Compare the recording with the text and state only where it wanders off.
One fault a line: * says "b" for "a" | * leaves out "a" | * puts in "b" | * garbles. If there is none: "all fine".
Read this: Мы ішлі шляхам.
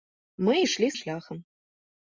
all fine